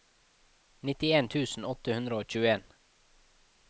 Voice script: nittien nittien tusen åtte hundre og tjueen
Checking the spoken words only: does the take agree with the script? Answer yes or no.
no